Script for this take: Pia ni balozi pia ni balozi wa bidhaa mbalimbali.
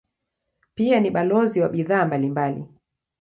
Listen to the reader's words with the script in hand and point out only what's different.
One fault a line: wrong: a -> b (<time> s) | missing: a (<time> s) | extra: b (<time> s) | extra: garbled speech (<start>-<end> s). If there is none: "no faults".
missing: pia ni balozi (1.6 s)